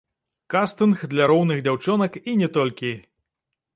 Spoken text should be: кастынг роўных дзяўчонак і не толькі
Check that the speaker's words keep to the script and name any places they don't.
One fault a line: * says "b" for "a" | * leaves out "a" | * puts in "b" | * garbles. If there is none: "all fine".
* puts in "для"